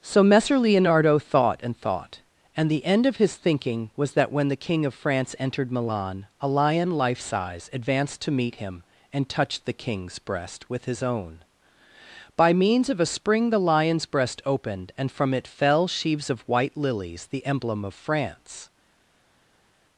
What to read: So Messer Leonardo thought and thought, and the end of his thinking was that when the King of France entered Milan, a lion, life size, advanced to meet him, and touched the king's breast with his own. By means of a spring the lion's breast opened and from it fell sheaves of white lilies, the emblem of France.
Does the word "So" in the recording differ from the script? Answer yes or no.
no